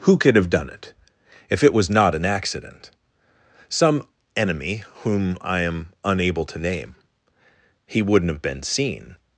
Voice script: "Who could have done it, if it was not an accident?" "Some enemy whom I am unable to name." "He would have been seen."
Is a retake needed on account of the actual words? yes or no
yes